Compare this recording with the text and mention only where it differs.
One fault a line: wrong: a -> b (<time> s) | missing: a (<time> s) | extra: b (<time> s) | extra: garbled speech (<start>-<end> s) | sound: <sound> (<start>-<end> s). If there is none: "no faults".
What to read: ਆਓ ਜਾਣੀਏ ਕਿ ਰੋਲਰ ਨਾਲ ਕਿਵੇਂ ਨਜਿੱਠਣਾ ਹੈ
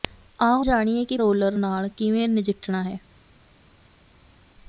no faults